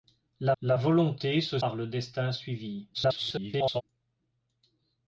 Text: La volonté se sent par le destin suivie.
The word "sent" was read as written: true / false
false